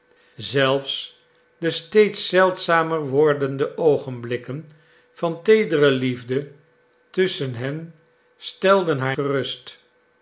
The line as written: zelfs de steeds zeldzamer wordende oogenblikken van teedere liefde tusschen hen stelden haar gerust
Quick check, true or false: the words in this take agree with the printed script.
true